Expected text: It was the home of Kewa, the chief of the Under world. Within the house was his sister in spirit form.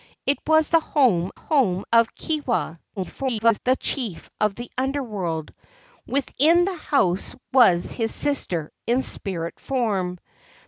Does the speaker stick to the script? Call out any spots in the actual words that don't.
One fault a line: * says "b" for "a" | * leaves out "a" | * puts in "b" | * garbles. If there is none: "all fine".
* puts in "home"
* garbles